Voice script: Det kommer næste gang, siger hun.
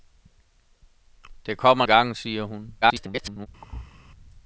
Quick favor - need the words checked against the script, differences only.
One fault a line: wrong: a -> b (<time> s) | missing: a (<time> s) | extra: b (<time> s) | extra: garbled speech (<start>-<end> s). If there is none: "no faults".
missing: næste (1.9 s)
extra: garbled speech (2.8-3.5 s)